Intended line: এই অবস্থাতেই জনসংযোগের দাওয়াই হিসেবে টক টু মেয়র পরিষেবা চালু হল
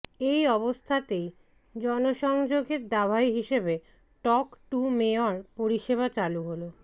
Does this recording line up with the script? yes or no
yes